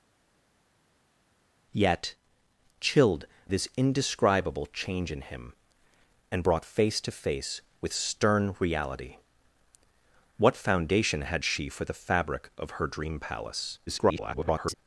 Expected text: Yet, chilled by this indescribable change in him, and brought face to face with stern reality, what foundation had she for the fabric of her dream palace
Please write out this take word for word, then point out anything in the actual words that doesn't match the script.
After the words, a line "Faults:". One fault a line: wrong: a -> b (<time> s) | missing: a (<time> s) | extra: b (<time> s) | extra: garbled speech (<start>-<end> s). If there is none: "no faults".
Yet, chilled this indescribable change in him, and brought face to face with stern reality, what foundation had she for the fabric of her dream palace [garbled]
Faults:
missing: by (3.3 s)
extra: garbled speech (13.9-14.7 s)